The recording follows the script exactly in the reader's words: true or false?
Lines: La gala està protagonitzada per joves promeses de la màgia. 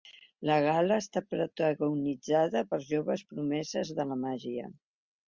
true